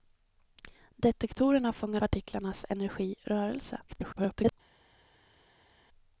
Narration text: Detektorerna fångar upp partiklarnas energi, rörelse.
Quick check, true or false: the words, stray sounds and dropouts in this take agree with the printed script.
false